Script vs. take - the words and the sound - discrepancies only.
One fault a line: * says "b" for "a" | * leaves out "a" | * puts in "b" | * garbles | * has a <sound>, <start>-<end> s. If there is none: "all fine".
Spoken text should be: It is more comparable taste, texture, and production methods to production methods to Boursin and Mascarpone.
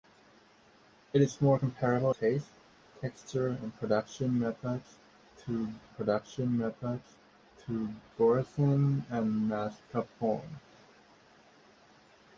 all fine